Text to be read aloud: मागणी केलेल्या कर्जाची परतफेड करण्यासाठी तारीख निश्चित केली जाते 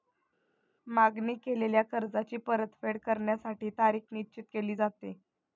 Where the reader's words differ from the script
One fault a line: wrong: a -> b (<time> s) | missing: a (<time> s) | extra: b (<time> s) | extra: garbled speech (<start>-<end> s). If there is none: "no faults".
no faults